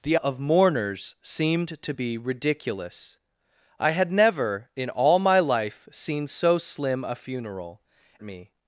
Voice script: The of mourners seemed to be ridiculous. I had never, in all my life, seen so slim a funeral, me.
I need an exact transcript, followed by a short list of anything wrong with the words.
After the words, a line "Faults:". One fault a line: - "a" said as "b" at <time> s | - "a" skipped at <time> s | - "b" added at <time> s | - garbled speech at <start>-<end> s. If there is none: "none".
The of mourners seemed to be ridiculous. I had never, in all my life, seen so slim a funeral, me.
Faults:
none